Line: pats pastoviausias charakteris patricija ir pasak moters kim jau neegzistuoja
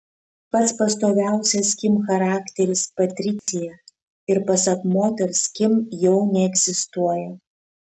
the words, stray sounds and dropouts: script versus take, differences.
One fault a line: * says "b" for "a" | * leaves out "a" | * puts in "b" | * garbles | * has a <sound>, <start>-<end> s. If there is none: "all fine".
* puts in "kim"
* has a dropout, 3.4-3.5 s